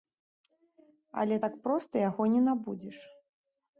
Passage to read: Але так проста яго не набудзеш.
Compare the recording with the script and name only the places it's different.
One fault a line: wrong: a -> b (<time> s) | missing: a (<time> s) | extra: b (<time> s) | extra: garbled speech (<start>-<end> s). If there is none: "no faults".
no faults